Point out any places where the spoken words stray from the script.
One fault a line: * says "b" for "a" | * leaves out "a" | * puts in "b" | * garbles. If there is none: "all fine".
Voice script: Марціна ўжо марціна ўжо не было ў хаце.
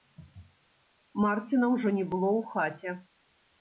* leaves out "марціна ўжо"